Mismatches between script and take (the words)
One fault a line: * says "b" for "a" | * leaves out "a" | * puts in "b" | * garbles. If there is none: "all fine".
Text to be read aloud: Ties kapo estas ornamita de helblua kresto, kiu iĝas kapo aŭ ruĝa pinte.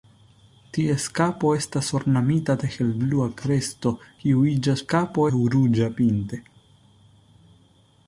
all fine